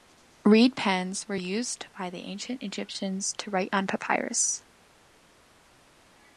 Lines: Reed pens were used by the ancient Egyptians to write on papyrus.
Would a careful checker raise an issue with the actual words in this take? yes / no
no